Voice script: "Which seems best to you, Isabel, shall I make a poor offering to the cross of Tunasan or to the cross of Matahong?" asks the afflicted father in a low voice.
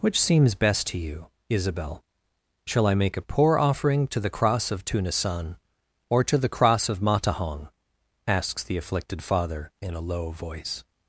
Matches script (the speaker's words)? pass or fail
pass